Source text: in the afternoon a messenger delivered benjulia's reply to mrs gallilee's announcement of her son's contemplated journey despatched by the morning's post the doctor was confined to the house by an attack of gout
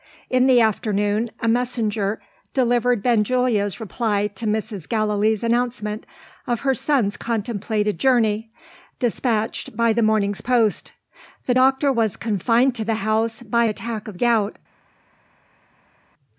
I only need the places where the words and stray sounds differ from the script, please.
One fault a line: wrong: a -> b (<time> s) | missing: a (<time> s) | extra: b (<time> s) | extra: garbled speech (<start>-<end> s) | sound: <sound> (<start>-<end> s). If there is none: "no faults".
missing: an (13.6 s)